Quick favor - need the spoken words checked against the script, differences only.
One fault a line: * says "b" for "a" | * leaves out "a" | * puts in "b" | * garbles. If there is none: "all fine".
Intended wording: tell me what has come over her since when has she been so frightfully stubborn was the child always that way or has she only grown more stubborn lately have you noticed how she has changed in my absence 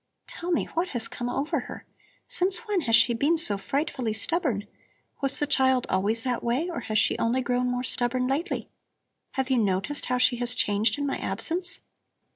all fine